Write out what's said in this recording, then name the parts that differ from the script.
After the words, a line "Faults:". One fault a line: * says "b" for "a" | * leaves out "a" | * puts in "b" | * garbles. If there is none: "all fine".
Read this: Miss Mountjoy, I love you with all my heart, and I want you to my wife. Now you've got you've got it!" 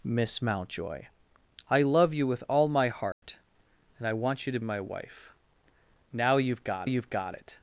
Miss Mountjoy, I love you with all my heart, and I want you to my wife. Now you've got you've got it!"
Faults:
all fine